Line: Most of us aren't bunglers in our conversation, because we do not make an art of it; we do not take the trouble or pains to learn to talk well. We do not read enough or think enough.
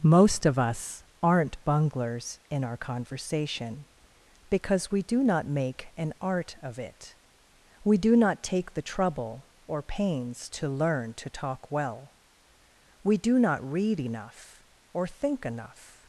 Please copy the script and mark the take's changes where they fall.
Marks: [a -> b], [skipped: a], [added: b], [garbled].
Most of us aren't bunglers in our conversation, because we do not make an art of it; we do not take the trouble or pains to learn to talk well. We do not read enough or think enough.